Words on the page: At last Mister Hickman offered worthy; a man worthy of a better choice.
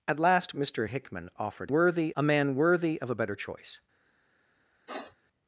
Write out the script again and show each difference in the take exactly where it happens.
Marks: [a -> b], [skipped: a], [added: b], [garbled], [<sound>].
At last Mister Hickman offered worthy; a man worthy of a better choice. [sniff]